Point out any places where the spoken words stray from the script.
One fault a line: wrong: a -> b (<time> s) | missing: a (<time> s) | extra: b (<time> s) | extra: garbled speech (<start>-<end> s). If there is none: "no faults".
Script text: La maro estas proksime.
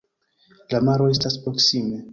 no faults